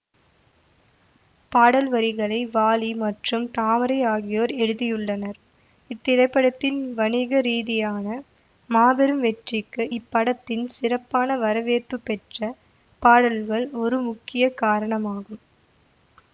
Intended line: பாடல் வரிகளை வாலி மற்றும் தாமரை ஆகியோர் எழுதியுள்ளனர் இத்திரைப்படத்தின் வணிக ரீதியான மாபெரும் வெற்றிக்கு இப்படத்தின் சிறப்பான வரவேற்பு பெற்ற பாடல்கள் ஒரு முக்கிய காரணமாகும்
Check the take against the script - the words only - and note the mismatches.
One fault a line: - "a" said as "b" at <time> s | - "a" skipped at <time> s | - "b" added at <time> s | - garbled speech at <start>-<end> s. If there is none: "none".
none